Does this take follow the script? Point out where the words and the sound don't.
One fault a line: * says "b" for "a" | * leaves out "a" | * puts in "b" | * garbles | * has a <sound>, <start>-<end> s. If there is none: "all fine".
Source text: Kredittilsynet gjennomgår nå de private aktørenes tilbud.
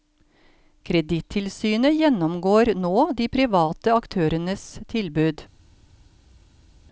all fine